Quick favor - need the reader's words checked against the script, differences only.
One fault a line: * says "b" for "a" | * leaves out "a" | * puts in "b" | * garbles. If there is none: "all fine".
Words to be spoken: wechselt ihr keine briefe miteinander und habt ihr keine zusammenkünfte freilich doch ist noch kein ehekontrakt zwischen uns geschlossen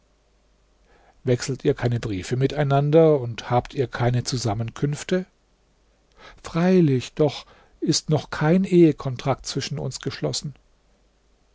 all fine